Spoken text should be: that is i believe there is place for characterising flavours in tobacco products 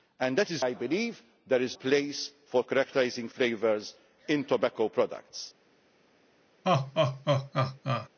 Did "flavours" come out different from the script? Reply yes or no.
no